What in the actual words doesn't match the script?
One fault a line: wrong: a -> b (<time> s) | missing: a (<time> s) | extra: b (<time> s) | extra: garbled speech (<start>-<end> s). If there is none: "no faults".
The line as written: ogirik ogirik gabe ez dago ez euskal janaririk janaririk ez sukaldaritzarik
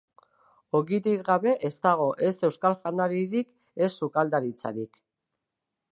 missing: ogirik (1.2 s)
missing: janaririk (3.5 s)